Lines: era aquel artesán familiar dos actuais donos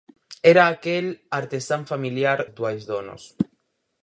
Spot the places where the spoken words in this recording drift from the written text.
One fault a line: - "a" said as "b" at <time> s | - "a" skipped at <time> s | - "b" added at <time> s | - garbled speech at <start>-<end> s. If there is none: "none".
- "dos" skipped at 2.4 s